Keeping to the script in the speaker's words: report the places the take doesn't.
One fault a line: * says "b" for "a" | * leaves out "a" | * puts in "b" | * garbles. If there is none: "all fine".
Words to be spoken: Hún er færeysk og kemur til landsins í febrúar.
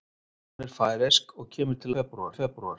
* says "febrúar" for "landsins"